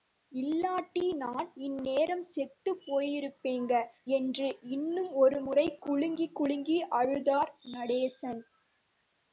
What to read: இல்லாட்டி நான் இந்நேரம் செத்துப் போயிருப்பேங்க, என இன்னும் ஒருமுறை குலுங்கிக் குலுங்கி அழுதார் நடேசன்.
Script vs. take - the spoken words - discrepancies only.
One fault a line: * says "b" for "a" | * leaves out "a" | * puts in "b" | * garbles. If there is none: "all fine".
* says "என்று" for "என"